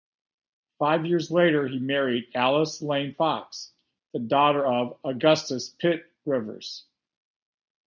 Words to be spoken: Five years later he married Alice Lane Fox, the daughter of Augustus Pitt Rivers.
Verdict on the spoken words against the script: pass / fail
pass